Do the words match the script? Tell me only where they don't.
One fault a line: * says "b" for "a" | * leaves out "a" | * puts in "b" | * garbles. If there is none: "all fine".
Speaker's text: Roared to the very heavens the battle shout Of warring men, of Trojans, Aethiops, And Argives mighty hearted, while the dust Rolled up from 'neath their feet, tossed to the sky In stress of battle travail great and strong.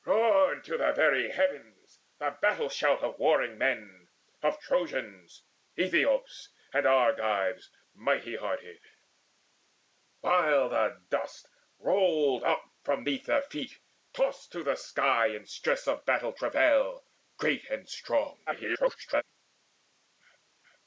* garbles